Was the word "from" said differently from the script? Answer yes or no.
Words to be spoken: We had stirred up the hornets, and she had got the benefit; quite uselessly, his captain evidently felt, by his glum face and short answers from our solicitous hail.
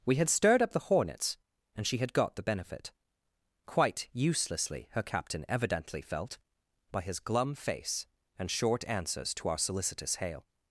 yes